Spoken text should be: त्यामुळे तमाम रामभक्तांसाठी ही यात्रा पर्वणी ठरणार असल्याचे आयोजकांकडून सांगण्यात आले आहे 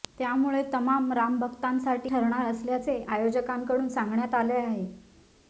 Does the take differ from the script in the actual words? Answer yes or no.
yes